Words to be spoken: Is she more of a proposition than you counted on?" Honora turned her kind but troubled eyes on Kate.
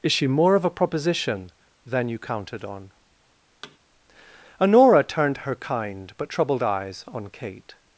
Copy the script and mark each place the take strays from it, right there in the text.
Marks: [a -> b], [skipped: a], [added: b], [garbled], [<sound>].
Is she more of a proposition than you counted on?" [thud] Honora turned her kind but troubled eyes on Kate.